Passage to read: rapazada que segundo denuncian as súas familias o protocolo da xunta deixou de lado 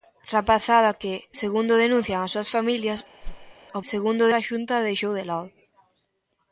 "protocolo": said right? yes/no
no